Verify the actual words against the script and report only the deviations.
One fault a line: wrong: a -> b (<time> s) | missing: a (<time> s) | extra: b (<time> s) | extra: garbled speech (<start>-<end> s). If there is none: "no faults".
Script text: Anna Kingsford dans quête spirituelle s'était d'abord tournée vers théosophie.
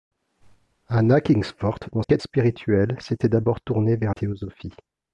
no faults